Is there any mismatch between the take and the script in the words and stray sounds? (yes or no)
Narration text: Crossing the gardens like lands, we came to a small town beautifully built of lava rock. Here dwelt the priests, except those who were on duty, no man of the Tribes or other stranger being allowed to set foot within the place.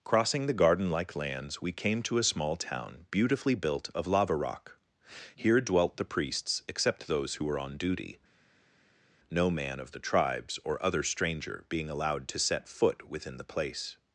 yes